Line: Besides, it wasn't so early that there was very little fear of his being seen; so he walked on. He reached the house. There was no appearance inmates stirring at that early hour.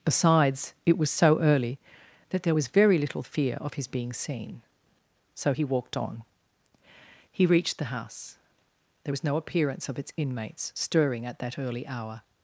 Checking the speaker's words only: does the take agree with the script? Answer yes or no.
no